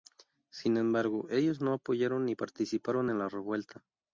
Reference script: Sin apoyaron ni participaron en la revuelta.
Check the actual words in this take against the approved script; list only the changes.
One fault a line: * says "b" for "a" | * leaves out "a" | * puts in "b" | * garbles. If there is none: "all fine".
* puts in "embargo ellos no"